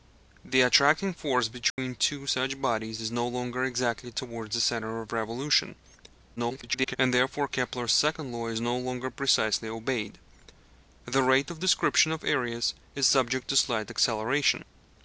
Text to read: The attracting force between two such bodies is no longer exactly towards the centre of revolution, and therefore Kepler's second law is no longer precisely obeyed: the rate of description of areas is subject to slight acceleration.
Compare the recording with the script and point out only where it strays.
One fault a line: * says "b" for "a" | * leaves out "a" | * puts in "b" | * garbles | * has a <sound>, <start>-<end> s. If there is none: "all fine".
* has a dropout, 1.7-1.8 s
* garbles